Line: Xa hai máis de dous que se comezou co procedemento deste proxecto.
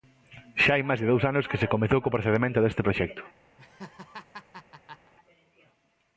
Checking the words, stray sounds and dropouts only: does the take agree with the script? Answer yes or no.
no